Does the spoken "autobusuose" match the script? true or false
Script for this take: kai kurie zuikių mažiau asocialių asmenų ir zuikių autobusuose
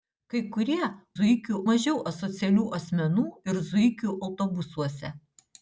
true